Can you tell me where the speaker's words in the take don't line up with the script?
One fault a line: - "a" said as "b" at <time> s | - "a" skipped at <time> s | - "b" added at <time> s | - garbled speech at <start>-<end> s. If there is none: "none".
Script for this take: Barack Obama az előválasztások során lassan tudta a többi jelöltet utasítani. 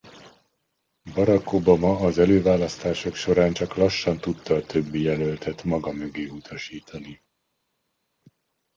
- "csak" added at 3.5 s
- "maga mögé" added at 5.6 s